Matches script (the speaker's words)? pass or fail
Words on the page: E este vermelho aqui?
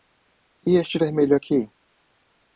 pass